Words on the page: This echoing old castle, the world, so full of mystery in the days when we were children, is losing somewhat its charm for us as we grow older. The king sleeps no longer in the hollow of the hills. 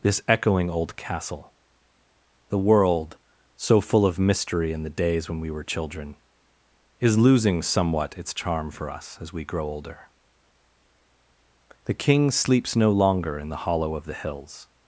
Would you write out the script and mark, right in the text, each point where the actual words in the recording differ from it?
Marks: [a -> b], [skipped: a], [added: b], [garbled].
This echoing old castle, the world, so full of mystery in the days when we were children, is losing somewhat its charm for us as we grow older. The king sleeps no longer in the hollow of the hills.